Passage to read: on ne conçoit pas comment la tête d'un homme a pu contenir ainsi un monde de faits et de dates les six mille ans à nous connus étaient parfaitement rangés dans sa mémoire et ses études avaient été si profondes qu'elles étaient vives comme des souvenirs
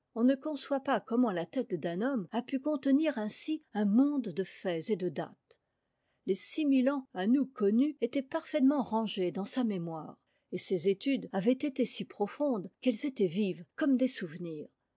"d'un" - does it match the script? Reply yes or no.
yes